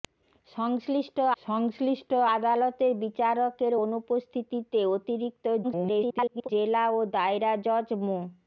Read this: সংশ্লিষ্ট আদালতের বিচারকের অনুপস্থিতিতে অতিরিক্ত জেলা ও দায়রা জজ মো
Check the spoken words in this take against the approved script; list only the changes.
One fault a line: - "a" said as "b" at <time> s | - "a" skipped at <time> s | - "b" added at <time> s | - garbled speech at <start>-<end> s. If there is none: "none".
- "সংশ্লিষ্ট" added at 1.4 s
- garbled speech at 5.6-6.5 s